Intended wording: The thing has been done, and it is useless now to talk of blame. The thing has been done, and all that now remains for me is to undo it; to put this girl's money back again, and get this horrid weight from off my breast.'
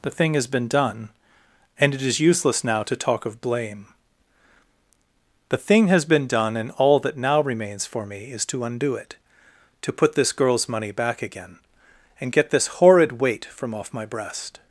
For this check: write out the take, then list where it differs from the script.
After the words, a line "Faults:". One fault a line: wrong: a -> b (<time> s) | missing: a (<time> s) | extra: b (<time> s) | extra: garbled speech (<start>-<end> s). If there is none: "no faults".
The thing has been done, and it is useless now to talk of blame. The thing has been done, and all that now remains for me is to undo it; to put this girl's money back again, and get this horrid weight from off my breast.'
Faults:
no faults